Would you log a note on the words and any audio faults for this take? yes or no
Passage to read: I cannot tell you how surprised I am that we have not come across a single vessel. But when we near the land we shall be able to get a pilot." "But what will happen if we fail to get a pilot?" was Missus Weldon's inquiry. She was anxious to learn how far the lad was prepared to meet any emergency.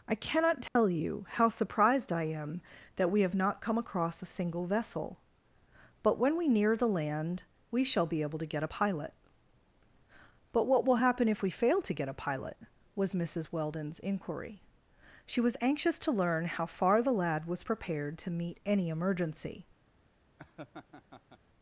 yes